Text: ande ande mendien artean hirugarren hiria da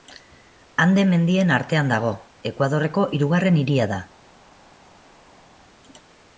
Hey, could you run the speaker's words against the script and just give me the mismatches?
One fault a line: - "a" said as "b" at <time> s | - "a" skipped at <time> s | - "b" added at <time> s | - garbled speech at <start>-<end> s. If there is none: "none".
- "ande" skipped at 1.0 s
- "dago ekuadorreko" added at 1.9 s